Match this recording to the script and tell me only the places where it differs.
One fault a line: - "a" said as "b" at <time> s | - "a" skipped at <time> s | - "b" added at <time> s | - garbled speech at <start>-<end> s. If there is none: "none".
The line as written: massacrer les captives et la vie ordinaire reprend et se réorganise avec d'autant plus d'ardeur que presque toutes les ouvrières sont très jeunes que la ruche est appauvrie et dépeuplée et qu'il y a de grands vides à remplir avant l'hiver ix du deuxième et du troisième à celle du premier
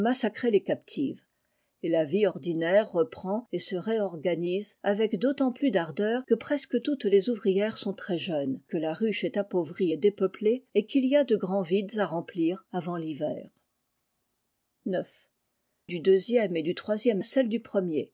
none